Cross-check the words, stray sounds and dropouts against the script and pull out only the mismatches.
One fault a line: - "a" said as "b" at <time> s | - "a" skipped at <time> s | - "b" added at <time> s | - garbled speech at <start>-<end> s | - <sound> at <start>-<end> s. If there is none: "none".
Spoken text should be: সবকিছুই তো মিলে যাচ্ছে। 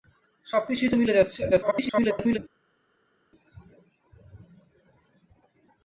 - garbled speech at 1.5-2.4 s